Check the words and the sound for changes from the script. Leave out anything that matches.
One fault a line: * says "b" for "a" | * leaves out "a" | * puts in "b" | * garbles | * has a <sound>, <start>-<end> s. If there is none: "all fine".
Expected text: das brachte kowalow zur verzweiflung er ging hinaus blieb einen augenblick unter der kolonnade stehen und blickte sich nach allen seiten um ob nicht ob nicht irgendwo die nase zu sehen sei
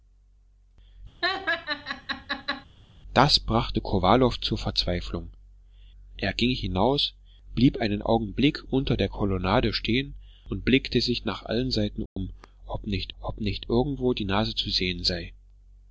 * has a laugh, 1.2-2.7 s
* has a dropout, 12.1-12.2 s